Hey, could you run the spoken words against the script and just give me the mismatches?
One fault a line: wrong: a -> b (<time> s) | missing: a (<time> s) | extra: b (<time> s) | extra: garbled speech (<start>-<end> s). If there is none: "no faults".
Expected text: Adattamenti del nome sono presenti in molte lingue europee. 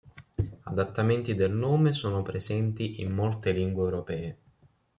no faults